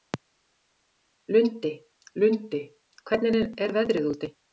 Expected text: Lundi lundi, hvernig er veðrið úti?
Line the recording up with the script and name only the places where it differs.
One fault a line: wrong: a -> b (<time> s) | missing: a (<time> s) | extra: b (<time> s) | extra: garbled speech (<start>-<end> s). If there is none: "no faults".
no faults